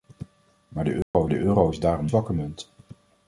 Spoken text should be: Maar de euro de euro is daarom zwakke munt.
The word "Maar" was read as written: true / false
true